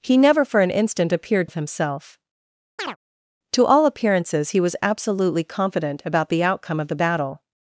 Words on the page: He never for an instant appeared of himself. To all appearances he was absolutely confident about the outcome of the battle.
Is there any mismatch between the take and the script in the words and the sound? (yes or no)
yes